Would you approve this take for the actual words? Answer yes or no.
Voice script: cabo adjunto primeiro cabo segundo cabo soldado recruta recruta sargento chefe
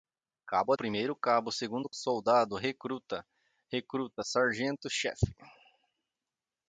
no